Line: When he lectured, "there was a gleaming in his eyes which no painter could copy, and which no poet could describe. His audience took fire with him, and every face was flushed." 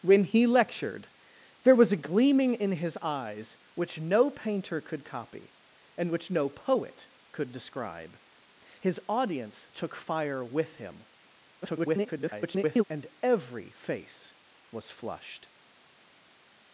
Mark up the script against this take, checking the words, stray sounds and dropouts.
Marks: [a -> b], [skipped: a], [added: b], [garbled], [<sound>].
When he lectured, "there was a gleaming in his eyes which no painter could copy, and which no poet could describe. His audience took fire with him, [garbled] and every face was flushed."